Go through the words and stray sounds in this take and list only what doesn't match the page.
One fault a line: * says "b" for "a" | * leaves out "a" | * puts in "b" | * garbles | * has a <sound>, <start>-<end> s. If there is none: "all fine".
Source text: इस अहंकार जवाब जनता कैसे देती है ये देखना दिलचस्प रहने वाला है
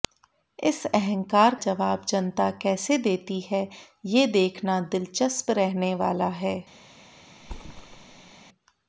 * has a thud, 7.4-8.3 s